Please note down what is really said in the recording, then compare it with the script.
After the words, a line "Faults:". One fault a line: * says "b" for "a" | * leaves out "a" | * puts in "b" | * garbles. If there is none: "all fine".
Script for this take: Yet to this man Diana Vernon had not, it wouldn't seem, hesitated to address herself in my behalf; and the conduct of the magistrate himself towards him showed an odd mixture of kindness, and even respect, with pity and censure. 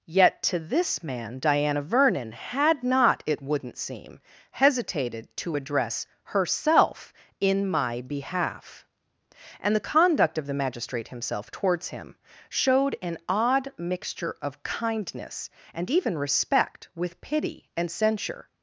Yet to this man Diana Vernon had not, it wouldn't seem, hesitated to address herself in my behalf; and the conduct of the magistrate himself towards him showed an odd mixture of kindness, and even respect, with pity and censure.
Faults:
all fine